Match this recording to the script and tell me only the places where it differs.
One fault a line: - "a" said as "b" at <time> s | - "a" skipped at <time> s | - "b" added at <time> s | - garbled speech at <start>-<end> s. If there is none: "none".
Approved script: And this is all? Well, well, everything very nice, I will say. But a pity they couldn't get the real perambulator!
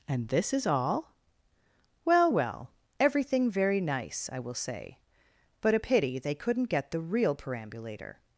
none